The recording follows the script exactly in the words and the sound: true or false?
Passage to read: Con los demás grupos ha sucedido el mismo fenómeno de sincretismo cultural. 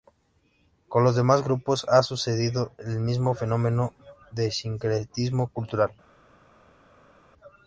true